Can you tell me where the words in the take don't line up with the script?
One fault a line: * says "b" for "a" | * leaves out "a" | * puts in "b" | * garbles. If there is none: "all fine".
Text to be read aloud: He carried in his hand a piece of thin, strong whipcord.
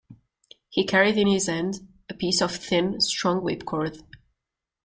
all fine